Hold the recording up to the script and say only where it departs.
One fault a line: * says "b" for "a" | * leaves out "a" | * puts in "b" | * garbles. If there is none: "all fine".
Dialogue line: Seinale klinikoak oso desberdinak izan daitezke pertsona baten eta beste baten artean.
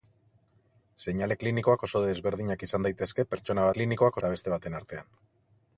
* says "klinikoak" for "baten"